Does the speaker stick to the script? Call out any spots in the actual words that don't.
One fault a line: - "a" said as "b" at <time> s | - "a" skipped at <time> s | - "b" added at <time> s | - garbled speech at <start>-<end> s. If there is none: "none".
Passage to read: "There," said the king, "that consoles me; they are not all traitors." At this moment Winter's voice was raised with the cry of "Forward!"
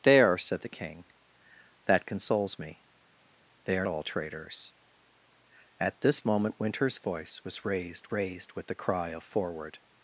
- "not" skipped at 3.9 s
- "raised" added at 8.1 s